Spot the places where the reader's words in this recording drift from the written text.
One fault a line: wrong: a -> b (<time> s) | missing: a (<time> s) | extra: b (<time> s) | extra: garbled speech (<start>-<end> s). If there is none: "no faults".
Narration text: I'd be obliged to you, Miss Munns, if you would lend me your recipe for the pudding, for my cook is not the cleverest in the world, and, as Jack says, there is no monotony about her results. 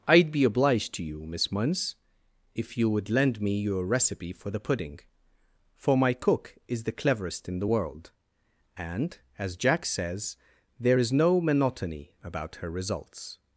missing: not (6.8 s)